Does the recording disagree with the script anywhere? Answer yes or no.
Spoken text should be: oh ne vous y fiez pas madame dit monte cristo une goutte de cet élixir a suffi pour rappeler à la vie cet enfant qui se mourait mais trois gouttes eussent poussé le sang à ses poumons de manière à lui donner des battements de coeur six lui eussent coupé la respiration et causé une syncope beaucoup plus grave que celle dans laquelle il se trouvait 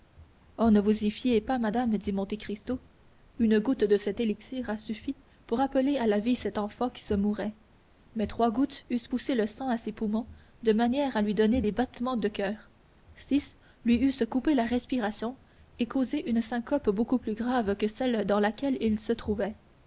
no